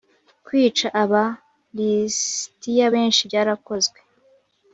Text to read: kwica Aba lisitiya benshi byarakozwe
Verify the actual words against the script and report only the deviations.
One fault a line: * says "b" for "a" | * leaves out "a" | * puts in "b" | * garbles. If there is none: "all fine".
all fine